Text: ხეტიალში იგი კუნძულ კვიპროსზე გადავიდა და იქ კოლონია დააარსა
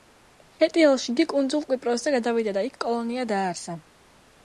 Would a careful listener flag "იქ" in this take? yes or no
no